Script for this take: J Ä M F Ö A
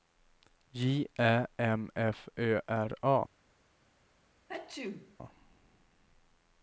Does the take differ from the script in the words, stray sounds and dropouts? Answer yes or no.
yes